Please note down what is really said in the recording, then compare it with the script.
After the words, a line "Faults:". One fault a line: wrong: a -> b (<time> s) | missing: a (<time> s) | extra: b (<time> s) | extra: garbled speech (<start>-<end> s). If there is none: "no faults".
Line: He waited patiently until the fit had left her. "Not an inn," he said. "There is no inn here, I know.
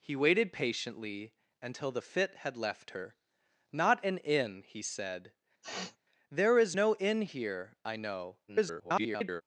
He waited patiently until the fit had left her. "Not an inn," he said. "There is no inn here, I know. [garbled]
Faults:
extra: garbled speech (8.5-9.4 s)